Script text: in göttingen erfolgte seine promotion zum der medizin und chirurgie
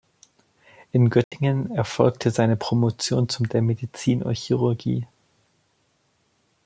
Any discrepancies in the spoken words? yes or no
no